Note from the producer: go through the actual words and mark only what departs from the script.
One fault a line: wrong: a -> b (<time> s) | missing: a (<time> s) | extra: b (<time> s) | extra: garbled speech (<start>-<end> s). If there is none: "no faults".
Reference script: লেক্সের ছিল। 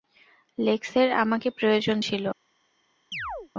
extra: আমাকে প্রয়োজন (1.1 s)